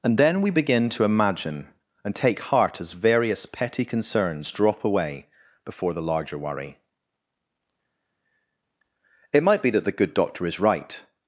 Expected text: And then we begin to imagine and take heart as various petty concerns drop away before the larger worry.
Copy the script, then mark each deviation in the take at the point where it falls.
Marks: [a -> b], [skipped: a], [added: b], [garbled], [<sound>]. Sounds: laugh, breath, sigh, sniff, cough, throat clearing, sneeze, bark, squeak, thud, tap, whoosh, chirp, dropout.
And then we begin to imagine and take heart as various petty concerns drop away before the larger worry. [added: It might be that the good doctor is right]